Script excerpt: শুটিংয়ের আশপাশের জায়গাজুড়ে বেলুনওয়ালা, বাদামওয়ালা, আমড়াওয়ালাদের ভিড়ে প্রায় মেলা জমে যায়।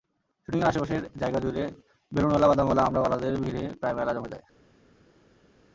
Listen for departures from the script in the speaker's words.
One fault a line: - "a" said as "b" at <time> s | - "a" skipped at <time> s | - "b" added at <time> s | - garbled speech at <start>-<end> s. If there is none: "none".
none